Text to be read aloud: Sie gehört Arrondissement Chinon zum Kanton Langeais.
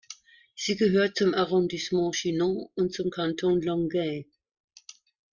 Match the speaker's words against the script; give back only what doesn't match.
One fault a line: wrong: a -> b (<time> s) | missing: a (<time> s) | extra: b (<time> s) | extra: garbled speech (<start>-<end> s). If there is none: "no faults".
extra: zum (1.1 s)
extra: und (2.8 s)